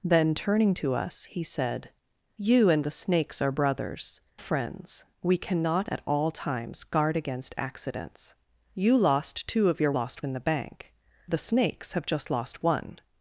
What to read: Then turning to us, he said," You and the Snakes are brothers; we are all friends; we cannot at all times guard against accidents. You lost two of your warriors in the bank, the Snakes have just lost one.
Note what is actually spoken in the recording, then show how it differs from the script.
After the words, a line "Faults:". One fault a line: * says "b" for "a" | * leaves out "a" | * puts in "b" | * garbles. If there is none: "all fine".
Then turning to us, he said," You and the Snakes are brothers; friends; we cannot at all times guard against accidents. You lost two of your lost in the bank, the Snakes have just lost one.
Faults:
* leaves out "we are all"
* says "lost" for "warriors"